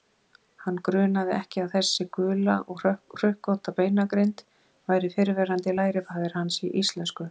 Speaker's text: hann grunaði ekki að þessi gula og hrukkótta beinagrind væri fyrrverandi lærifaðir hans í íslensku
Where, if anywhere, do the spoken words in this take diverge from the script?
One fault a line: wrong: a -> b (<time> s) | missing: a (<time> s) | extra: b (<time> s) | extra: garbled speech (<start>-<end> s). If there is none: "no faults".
no faults